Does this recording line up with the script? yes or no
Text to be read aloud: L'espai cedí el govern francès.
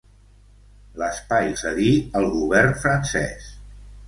yes